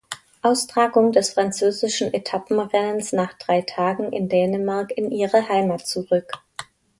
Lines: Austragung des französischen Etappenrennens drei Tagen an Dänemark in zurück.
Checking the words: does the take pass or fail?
fail